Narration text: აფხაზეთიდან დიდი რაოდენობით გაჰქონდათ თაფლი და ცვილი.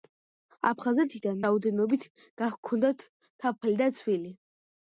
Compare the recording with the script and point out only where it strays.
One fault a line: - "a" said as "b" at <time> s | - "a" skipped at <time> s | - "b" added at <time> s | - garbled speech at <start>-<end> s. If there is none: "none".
- "დიდი" skipped at 1.4 s